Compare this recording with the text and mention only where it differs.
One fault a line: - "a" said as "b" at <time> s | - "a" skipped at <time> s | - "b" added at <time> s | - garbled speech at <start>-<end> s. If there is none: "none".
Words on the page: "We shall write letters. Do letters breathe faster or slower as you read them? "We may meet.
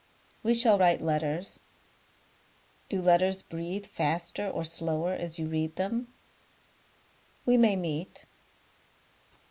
none